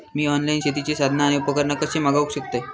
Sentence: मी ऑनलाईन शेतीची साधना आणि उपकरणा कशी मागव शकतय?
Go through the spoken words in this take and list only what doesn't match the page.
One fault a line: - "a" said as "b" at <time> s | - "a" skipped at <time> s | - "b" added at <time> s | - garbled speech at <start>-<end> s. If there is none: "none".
none